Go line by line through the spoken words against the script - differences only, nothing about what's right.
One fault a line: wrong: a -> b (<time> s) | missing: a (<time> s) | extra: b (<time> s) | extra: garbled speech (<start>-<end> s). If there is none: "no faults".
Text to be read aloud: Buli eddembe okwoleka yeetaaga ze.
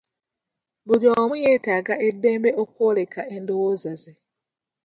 extra: omu yeetaaga (1.2 s)
wrong: yeetaaga -> endowooza (3.4 s)